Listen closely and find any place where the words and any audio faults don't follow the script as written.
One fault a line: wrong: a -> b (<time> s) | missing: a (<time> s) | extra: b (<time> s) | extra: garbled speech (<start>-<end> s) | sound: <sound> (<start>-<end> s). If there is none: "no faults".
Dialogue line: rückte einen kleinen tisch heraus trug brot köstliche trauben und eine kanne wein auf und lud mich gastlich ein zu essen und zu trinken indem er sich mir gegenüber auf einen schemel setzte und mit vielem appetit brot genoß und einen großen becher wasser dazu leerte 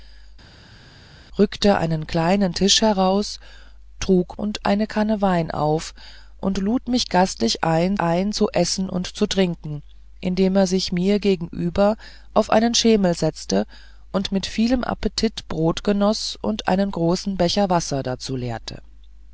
missing: brot köstliche trauben (4.4 s)
extra: ein (8.0 s)